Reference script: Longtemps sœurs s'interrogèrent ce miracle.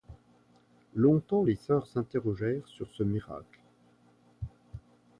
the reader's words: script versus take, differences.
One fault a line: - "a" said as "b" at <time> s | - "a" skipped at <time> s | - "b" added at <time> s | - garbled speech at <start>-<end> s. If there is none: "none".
- "les" added at 1.4 s
- "sur" added at 2.7 s